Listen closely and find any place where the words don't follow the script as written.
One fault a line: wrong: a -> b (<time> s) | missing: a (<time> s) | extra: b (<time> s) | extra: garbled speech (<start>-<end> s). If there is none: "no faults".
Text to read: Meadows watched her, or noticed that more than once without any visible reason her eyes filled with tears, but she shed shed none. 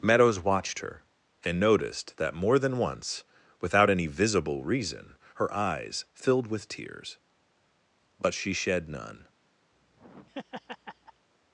wrong: or -> and (1.4 s)
missing: shed (8.9 s)